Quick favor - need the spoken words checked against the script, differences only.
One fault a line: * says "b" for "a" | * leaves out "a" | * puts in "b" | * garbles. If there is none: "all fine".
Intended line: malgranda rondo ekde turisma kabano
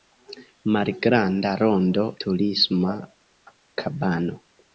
* leaves out "ekde"